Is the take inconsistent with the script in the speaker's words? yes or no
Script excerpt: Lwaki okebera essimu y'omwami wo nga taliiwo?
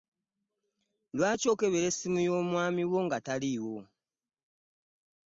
no